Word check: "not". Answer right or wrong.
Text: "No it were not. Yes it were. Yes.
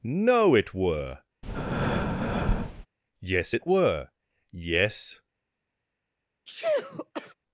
wrong